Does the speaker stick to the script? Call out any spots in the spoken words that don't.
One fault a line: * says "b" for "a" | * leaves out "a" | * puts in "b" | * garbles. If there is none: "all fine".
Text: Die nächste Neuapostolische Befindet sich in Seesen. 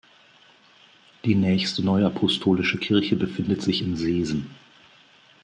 * puts in "Kirche"